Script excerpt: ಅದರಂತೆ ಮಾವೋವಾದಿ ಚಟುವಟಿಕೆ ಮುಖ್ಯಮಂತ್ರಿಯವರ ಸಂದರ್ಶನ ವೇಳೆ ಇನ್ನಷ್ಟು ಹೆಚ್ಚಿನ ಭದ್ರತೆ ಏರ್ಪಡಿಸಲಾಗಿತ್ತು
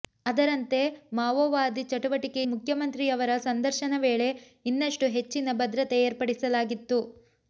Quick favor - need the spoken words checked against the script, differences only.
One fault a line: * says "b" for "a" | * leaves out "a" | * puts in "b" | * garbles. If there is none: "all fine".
all fine